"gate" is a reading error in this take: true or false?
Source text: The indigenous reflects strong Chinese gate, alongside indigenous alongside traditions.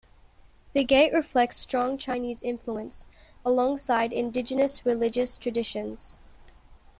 true